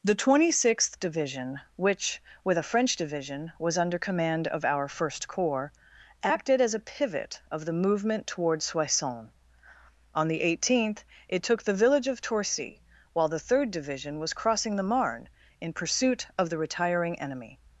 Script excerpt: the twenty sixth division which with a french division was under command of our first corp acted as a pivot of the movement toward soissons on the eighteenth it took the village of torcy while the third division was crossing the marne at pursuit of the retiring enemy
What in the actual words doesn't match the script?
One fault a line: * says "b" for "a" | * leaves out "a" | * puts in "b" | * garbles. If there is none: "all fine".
* says "corps" for "corp"
* says "in" for "at"